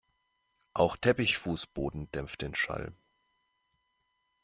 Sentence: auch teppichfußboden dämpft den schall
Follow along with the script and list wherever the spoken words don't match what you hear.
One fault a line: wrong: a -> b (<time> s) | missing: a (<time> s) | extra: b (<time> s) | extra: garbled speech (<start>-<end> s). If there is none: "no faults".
no faults